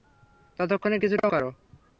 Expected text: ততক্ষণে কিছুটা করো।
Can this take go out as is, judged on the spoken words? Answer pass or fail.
pass